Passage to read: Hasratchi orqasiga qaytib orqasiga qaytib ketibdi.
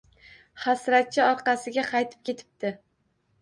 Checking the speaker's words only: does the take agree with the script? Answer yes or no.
no